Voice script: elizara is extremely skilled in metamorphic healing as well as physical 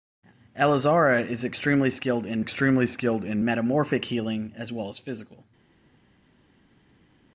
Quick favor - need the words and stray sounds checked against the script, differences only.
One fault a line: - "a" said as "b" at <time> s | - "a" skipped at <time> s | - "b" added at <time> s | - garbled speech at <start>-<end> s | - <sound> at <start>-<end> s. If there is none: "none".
- "extremely skilled in" added at 2.4 s